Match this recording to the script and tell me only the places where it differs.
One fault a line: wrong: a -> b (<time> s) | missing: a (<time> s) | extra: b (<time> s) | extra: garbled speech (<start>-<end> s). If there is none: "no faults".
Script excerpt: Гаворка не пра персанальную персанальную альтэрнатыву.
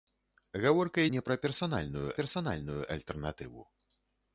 no faults